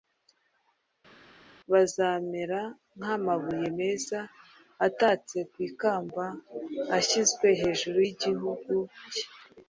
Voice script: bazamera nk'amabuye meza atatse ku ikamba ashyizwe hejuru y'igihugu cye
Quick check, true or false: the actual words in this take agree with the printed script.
true